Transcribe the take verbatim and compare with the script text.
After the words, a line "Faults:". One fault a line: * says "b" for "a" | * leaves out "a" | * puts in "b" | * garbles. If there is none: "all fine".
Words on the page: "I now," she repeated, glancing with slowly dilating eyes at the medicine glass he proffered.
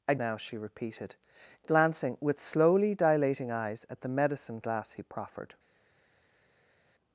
"I now," she repeated, glancing with slowly dilating eyes at the medicine glass he proffered.
Faults:
all fine